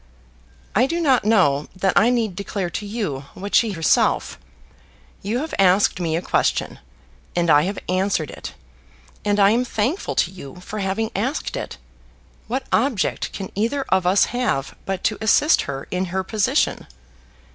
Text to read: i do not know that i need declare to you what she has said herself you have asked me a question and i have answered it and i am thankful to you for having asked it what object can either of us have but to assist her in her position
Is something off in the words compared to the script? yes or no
yes